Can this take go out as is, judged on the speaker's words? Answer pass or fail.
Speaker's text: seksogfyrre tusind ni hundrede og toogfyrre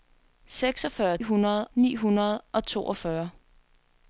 fail